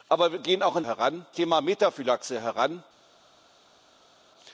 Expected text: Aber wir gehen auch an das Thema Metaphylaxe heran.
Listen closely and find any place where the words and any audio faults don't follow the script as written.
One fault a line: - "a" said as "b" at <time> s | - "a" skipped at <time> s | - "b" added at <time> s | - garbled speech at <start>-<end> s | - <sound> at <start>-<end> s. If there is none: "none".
- "das" said as "heran" at 0.8 s